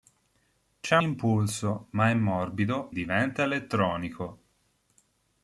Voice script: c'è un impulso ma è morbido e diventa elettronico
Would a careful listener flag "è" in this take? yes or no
no